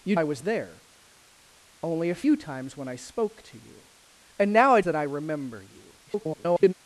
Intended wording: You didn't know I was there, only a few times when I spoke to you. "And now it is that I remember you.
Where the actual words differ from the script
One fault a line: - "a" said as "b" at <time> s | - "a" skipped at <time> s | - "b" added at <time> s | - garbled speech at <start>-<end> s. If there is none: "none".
- "didn't know" skipped at 0.1 s
- "is" skipped at 4.9 s
- garbled speech at 6.1-6.7 s